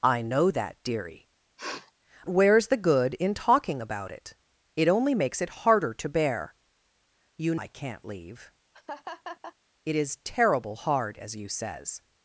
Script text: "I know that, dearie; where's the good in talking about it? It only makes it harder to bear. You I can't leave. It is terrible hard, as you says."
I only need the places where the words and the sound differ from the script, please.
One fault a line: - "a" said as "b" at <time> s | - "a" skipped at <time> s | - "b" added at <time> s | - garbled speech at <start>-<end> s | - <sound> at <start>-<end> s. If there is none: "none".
- sniff at 1.6-1.9 s
- laugh at 8.7-9.6 s